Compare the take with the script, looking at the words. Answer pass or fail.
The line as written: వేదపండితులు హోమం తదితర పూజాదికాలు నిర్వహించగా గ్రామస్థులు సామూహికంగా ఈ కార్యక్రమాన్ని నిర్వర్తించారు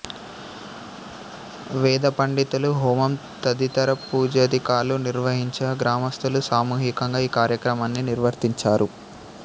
pass